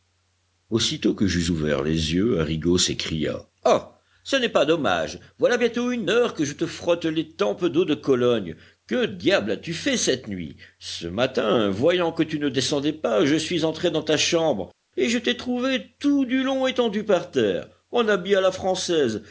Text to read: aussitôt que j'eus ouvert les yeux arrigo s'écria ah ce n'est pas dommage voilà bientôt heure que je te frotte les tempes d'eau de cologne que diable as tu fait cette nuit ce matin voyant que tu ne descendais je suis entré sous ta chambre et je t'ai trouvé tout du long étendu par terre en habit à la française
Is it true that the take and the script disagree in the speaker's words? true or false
true